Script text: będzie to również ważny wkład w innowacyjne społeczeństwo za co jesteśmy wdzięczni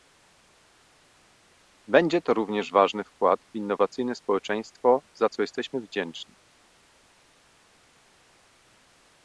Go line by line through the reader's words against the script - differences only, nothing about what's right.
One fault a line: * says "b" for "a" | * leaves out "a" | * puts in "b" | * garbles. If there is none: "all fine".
all fine